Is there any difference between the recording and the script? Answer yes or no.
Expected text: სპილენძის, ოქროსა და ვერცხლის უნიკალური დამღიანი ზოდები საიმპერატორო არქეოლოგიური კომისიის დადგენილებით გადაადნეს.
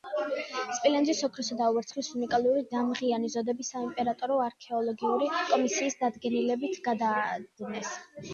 no